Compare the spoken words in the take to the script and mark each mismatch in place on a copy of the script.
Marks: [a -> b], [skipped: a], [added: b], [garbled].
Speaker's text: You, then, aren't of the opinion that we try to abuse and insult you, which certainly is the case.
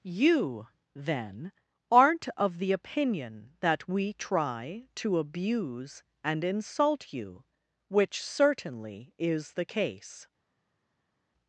You, then, aren't of the opinion that we try to abuse and insult you, which certainly is the case.